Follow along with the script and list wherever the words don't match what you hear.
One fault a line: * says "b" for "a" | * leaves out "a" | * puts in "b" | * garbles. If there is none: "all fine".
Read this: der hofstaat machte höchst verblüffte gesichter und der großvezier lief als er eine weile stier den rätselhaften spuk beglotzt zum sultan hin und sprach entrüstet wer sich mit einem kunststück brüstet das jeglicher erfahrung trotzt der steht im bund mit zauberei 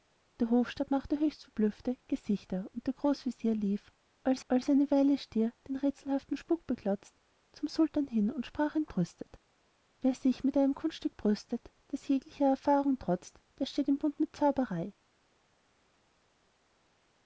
* puts in "als"